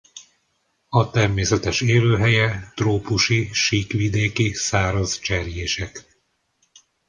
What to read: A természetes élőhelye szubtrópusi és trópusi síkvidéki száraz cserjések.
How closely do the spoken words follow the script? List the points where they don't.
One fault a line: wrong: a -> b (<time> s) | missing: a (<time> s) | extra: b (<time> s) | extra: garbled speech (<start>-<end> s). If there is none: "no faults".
missing: szubtrópusi és (2.7 s)